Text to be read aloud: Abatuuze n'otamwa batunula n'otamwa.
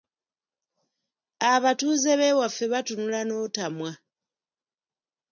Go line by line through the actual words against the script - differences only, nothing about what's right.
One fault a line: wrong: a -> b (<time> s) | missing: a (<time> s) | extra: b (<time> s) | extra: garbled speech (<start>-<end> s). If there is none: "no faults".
wrong: n'otamwa -> b'ewaffe (2.2 s)